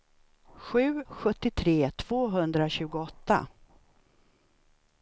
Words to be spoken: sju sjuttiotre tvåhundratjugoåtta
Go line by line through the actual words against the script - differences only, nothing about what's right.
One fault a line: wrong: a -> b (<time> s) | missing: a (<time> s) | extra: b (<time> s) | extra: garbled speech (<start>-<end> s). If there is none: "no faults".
no faults